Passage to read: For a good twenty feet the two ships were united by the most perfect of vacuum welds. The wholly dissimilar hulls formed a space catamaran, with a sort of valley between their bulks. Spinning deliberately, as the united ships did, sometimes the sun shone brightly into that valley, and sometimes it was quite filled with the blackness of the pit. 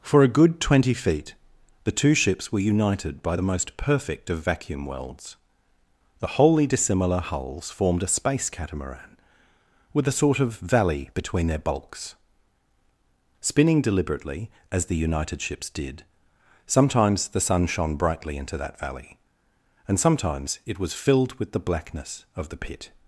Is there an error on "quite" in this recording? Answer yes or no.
yes